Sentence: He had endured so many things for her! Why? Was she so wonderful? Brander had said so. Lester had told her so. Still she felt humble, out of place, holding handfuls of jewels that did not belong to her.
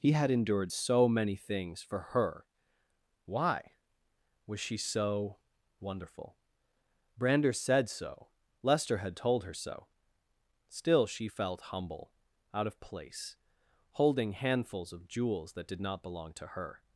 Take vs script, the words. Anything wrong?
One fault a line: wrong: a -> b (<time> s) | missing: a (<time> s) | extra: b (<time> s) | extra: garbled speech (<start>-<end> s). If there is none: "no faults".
missing: had (7.5 s)